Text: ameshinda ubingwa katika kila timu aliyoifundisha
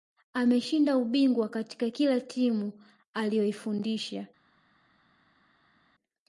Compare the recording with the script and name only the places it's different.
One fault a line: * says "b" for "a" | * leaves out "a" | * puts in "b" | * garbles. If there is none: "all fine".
all fine